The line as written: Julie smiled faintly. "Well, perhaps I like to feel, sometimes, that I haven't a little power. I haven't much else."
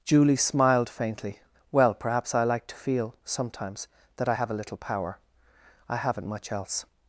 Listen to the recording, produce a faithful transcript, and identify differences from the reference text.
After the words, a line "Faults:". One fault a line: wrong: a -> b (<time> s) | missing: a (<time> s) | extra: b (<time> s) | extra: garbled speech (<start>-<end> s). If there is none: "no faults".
Julie smiled faintly. "Well, perhaps I like to feel, sometimes, that I have a little power. I haven't much else."
Faults:
wrong: haven't -> have (4.3 s)